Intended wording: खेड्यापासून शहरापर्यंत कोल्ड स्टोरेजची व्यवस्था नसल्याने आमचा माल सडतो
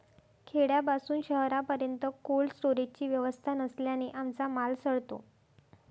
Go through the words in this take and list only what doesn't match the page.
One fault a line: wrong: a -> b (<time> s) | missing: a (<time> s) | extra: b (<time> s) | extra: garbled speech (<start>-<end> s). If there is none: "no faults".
no faults